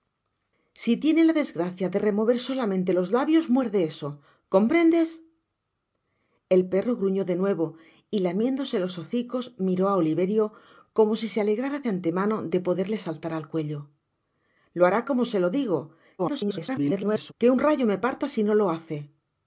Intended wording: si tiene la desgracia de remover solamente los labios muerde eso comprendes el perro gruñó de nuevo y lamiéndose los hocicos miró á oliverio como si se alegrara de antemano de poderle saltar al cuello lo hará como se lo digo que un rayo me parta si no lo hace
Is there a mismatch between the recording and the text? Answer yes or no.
yes